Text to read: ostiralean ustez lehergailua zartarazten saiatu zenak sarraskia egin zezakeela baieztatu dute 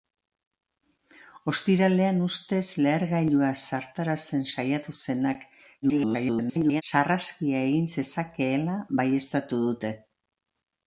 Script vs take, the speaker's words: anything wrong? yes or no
yes